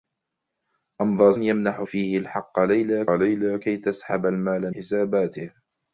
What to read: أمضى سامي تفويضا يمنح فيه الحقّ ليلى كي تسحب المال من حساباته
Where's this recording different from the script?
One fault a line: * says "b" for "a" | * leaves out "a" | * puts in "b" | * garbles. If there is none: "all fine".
* leaves out "سامي تفويضا"
* puts in "ليلى"
* leaves out "من"